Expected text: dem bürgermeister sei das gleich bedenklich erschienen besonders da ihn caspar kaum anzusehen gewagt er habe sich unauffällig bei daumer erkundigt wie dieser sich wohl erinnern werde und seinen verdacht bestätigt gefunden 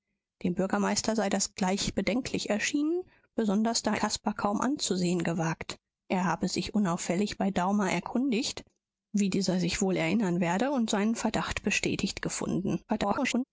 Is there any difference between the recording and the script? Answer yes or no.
yes